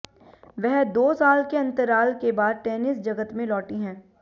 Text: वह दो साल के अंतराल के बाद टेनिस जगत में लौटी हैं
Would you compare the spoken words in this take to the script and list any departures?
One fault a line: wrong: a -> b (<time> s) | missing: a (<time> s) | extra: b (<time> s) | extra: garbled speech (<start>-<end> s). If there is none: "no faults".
no faults